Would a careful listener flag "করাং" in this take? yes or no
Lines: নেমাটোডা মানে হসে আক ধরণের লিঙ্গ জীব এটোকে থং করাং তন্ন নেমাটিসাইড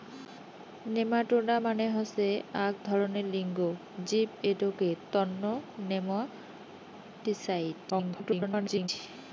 yes